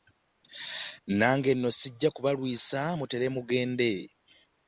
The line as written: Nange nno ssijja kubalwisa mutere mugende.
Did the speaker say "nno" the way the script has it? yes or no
yes